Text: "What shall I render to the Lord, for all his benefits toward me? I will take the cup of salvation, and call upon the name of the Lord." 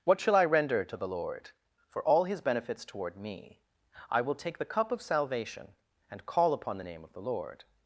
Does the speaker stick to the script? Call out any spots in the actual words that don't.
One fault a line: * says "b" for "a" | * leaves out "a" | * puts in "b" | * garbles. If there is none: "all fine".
all fine